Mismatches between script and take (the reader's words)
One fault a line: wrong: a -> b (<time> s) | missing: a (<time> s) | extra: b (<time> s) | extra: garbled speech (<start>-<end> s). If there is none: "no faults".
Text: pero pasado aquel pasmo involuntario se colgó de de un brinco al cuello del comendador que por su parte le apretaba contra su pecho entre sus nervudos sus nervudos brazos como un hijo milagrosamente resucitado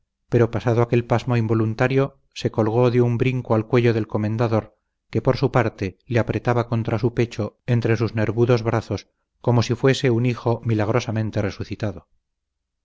missing: de (3.0 s)
wrong: sus nervudos brazos como -> brazos como si fuese (8.6 s)